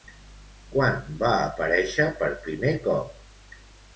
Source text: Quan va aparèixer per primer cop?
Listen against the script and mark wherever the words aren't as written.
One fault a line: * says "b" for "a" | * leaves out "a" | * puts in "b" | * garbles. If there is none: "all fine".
all fine